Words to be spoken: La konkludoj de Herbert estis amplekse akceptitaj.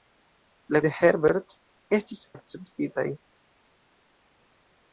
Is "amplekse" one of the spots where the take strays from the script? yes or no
yes